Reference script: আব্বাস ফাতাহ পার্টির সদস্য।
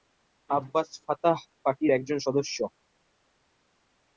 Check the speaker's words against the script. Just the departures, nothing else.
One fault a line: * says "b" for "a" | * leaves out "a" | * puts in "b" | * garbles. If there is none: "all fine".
* puts in "একজন"